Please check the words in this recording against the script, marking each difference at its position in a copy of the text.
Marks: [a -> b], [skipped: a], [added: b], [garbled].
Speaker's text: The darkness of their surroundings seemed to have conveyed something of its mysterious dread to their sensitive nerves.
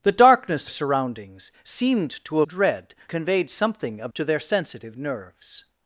The darkness [skipped: of their] surroundings seemed to [have -> dread] conveyed something of [skipped: its mysterious dread] to their sensitive nerves.